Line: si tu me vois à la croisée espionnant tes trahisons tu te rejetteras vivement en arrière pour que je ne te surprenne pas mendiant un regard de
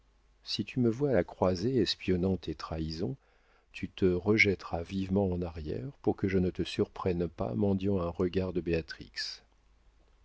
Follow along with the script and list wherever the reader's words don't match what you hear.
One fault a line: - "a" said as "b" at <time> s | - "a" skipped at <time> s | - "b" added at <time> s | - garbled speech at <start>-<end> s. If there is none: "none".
none